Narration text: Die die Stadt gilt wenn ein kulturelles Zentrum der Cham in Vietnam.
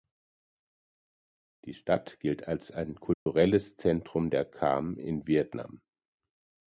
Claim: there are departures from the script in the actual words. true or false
true